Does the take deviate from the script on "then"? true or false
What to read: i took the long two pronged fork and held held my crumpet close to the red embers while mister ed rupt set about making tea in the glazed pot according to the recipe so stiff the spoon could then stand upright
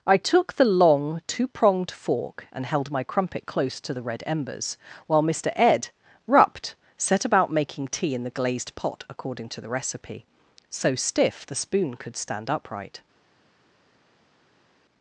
true